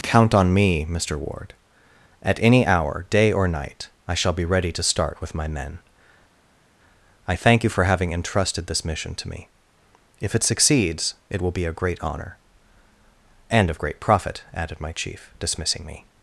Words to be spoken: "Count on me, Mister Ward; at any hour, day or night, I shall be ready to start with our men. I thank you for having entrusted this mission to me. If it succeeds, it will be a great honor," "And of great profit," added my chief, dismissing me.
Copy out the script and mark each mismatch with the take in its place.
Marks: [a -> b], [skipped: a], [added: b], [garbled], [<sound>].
"Count on me, Mister Ward; at any hour, day or night, I shall be ready to start with [our -> my] men. I thank you for having entrusted this mission to me. If it succeeds, it will be a great honor," "And of great profit," added my chief, dismissing me.